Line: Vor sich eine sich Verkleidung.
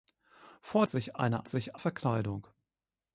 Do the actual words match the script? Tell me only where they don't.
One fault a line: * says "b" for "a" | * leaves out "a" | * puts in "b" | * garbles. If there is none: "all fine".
all fine